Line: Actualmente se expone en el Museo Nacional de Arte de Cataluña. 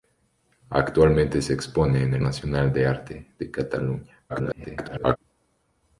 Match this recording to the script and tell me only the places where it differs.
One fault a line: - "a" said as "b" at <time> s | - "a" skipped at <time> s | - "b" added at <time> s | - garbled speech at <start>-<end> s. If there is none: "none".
- "Museo" skipped at 2.2 s
- garbled speech at 4.3-5.2 s